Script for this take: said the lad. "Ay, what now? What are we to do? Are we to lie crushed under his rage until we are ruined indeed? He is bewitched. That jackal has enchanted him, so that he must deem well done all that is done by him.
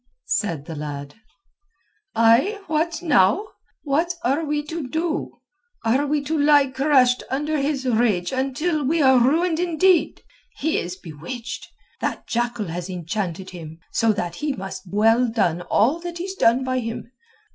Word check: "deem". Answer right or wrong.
wrong